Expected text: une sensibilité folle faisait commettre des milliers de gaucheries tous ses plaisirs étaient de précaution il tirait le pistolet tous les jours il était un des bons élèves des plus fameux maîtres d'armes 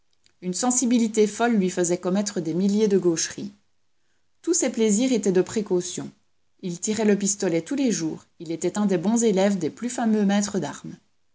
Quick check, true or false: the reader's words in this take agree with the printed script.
false